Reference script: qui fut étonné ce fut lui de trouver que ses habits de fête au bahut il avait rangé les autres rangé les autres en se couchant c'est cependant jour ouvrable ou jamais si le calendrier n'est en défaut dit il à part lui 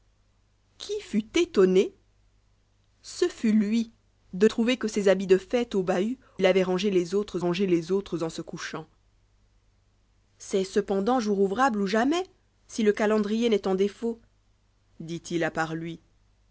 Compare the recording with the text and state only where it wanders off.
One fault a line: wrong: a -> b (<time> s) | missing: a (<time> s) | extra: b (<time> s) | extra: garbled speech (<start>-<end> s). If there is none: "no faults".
no faults